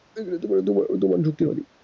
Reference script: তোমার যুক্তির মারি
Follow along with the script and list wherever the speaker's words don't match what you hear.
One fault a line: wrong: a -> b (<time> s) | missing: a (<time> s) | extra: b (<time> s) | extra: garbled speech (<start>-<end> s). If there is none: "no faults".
no faults